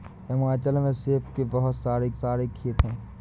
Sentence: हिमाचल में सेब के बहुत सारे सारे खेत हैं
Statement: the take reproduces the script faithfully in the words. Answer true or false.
true